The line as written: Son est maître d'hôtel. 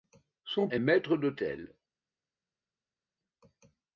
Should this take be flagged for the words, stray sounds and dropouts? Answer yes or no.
no